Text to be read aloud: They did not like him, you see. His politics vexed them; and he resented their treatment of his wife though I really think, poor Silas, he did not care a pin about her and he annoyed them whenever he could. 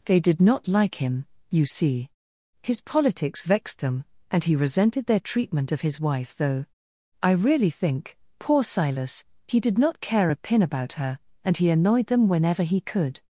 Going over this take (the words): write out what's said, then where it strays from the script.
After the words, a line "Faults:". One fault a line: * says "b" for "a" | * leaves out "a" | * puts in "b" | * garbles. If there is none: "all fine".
They did not like him, you see. His politics vexed them; and he resented their treatment of his wife though I really think, poor Silas, he did not care a pin about her and he annoyed them whenever he could.
Faults:
all fine